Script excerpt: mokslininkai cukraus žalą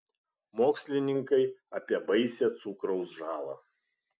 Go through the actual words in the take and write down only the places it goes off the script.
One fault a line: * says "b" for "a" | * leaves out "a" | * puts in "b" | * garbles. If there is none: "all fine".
* puts in "apie baisią"